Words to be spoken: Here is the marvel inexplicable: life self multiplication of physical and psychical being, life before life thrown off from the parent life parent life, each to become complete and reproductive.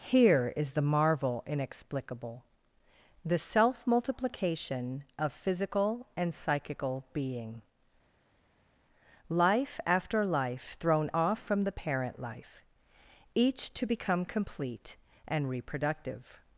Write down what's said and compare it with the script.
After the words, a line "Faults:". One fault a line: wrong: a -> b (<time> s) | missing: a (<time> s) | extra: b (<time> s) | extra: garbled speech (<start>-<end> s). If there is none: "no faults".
Here is the marvel inexplicable: the self multiplication of physical and psychical being, life after life thrown off from the parent life, each to become complete and reproductive.
Faults:
wrong: life -> the (3.2 s)
wrong: before -> after (9.8 s)
missing: parent life (12.6 s)